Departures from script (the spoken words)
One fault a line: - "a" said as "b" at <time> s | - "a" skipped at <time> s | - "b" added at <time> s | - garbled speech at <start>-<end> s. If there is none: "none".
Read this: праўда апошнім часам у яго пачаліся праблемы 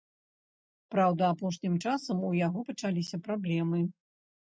none